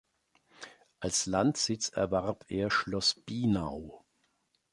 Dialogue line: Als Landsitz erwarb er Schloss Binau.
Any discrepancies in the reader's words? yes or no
no